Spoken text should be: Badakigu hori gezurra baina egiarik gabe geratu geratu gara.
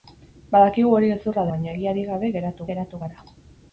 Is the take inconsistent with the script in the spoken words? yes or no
no